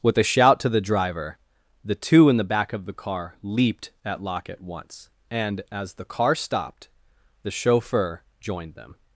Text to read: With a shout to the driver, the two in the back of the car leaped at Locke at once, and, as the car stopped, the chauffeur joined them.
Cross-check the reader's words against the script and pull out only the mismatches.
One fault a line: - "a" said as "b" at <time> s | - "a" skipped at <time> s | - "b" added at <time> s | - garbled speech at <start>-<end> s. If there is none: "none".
none